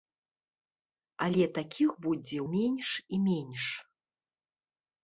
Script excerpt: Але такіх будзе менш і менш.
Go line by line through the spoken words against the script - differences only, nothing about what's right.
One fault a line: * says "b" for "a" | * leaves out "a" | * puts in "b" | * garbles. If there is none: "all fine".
all fine